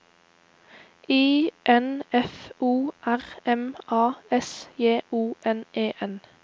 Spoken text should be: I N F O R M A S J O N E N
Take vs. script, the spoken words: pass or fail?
pass